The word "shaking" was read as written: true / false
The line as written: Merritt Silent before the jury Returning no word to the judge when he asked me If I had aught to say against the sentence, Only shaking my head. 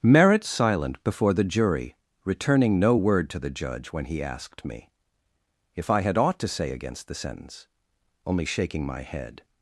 true